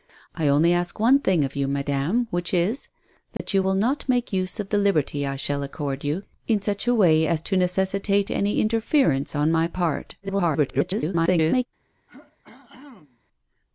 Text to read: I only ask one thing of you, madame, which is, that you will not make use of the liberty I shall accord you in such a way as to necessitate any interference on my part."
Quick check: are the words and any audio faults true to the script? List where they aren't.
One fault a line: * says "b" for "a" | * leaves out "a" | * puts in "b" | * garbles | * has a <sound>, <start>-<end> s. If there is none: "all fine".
* has a dropout, 3.4-3.4 s
* garbles
* has a throat clearing, 12.1-13.2 s